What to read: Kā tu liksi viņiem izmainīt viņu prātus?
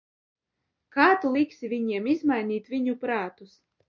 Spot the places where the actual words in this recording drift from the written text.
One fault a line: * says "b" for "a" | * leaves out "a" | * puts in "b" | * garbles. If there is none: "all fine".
all fine